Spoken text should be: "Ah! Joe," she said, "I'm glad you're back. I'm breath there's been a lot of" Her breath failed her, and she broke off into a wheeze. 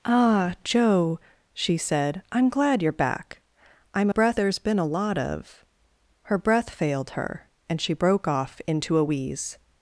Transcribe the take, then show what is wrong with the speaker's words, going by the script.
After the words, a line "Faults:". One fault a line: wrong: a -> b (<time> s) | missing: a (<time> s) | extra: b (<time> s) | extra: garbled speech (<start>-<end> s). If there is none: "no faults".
"Ah! Joe," she said, "I'm glad you're back. I'm breath there's been a lot of" Her breath failed her, and she broke off into a wheeze.
Faults:
no faults